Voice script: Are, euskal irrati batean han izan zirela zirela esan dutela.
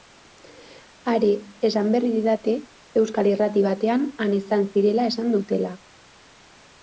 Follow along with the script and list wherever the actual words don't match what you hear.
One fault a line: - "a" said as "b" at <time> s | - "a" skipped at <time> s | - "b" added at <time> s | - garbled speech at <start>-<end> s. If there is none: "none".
- "esan berri didate" added at 1.7 s
- "zirela" skipped at 5.0 s